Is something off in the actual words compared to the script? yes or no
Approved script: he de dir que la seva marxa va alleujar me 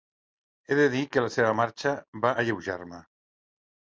no